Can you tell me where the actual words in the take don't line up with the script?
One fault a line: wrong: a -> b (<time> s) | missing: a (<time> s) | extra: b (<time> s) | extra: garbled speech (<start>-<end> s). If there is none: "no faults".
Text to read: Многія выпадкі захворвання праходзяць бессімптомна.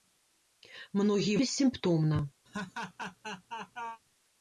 missing: выпадкі захворвання праходзяць (1.4 s)